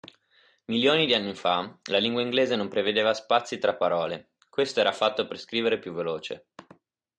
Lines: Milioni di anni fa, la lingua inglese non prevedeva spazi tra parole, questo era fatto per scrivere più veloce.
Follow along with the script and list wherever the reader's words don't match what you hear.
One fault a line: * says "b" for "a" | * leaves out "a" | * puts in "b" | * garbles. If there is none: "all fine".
all fine